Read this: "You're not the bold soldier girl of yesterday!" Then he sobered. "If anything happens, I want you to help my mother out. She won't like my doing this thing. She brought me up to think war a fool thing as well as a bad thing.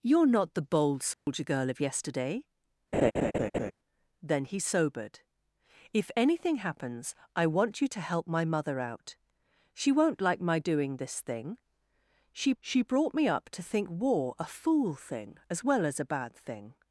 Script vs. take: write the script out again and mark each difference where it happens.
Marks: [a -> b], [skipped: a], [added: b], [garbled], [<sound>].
"You're not the bold soldier [dropout] girl of yesterday!" [laugh] Then he sobered. "If anything happens, I want you to help my mother out. She won't like my doing this thing. She [added: she] brought me up to think war a fool thing as well as a bad thing.